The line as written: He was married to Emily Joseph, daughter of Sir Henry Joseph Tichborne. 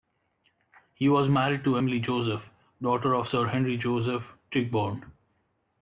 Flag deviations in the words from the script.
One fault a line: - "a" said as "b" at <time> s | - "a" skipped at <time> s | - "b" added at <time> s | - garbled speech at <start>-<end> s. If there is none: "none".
none